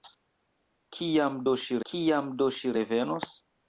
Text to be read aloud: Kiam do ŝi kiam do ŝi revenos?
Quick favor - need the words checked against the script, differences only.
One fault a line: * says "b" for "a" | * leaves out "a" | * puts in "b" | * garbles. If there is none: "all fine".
all fine